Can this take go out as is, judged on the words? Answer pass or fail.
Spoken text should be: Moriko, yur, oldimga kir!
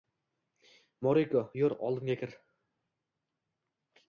pass